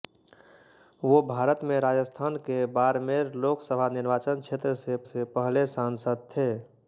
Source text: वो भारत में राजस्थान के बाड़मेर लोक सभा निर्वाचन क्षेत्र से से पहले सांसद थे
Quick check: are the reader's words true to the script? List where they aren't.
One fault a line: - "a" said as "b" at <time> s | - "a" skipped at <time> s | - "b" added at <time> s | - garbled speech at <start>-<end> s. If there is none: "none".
none